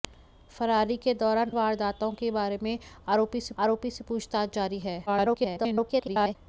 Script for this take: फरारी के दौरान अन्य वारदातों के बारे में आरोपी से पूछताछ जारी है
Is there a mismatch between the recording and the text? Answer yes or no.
yes